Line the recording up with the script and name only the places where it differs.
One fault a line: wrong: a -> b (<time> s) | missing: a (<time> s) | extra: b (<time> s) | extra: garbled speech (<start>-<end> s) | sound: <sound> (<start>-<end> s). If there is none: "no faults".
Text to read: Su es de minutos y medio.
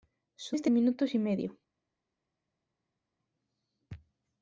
no faults